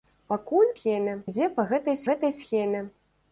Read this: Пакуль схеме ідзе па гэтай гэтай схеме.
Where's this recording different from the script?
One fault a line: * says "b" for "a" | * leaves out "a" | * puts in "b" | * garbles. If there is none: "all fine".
all fine